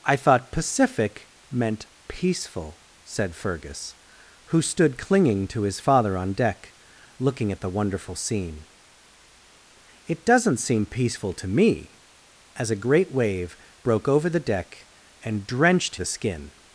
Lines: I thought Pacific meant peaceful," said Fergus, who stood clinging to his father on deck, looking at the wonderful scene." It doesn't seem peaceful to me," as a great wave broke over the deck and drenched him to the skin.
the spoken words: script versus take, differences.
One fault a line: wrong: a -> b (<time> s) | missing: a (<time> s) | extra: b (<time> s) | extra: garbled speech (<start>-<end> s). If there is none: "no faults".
missing: him to (16.0 s)